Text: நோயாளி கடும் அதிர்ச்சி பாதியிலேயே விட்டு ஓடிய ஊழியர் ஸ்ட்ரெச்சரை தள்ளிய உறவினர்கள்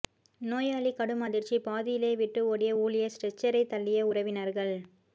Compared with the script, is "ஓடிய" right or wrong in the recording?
right